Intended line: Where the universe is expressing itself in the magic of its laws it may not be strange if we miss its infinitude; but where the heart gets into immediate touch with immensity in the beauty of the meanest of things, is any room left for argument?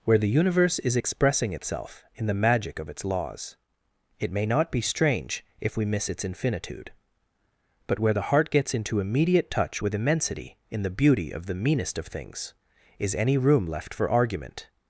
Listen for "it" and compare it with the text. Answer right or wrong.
right